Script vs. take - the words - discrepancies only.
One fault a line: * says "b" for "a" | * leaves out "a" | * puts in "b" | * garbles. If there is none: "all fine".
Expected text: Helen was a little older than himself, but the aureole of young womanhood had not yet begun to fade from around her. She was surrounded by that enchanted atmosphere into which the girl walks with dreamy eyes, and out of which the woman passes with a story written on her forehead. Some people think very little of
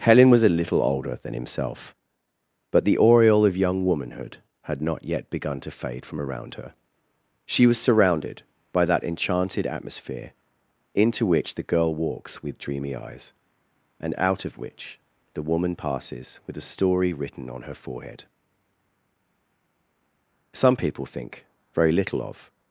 all fine